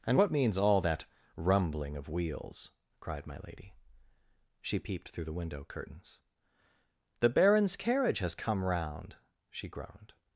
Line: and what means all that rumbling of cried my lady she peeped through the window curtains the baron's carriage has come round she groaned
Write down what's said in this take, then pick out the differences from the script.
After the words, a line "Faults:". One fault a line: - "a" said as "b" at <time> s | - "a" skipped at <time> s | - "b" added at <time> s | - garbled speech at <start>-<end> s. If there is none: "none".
and what means all that rumbling of wheels cried my lady she peeped through the window curtains the baron's carriage has come round she groaned
Faults:
- "wheels" added at 2.1 s